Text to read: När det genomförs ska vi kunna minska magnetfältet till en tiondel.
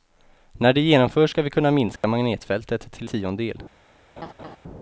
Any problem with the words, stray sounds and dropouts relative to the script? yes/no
yes